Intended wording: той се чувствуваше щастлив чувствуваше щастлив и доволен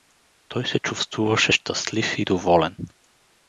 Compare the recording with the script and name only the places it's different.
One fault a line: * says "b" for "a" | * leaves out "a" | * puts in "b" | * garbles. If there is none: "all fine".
* leaves out "чувствуваше щастлив"